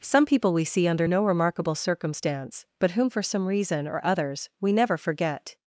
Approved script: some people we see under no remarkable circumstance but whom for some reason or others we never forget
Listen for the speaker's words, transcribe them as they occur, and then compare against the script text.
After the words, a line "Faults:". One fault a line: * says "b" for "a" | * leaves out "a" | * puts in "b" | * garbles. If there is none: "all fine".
some people we see under no remarkable circumstance but whom for some reason or others we never forget
Faults:
all fine